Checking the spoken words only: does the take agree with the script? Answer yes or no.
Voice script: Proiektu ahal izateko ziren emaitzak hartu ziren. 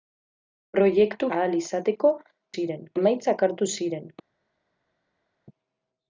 yes